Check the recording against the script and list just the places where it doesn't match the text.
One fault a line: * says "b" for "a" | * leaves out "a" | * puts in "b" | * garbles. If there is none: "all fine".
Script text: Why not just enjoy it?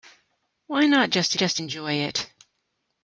* puts in "just"